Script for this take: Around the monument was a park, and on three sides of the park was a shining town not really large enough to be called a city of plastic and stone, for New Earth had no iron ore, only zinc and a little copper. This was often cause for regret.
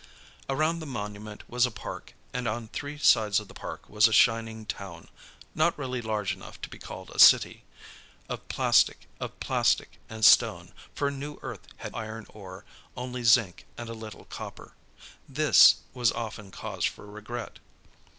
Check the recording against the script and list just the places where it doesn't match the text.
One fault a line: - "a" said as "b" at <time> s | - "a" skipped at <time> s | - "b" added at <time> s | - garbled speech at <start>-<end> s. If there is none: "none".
- "of plastic" added at 9.2 s
- "no" skipped at 12.0 s